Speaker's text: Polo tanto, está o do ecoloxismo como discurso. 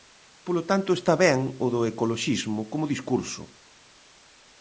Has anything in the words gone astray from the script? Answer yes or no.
yes